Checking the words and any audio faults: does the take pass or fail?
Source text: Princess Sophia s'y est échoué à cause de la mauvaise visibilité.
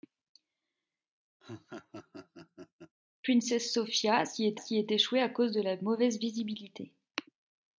fail